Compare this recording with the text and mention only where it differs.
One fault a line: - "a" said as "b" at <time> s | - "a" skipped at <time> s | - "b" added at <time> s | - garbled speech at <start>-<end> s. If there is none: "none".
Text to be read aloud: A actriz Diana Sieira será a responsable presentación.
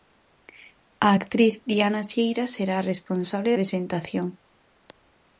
none